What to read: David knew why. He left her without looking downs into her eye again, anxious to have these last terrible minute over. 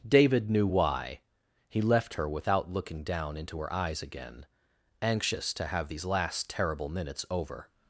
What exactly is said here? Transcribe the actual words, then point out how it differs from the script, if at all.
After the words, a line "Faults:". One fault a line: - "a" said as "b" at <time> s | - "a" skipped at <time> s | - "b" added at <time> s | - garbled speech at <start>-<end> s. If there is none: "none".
David knew why. He left her without looking down into her eyes again, anxious to have these last terrible minutes over.
Faults:
- "downs" said as "down" at 3.0 s
- "eye" said as "eyes" at 3.7 s
- "minute" said as "minutes" at 6.9 s